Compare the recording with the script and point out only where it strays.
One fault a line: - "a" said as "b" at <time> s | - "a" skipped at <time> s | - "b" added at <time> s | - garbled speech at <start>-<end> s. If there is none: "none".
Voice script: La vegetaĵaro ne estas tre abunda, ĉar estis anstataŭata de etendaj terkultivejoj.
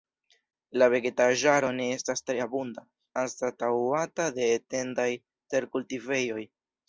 - "ĉar estis" skipped at 2.8 s